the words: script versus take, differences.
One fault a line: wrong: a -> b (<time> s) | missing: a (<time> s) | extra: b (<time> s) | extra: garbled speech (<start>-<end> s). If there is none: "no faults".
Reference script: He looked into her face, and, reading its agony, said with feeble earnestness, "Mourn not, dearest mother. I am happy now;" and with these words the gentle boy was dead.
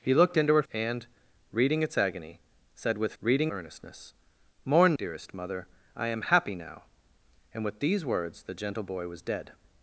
missing: face (0.6 s)
wrong: feeble -> reading (3.2 s)
missing: not (5.0 s)